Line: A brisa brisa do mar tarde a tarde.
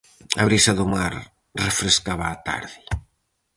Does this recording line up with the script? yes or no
no